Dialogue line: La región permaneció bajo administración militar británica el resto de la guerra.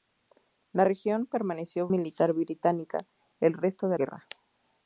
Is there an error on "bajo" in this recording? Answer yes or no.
yes